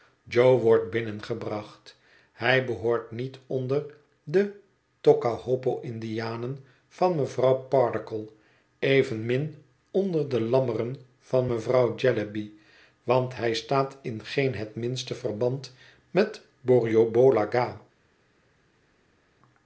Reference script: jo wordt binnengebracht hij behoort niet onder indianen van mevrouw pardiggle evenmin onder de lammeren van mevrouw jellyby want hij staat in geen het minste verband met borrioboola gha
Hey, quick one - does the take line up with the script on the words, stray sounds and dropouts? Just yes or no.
no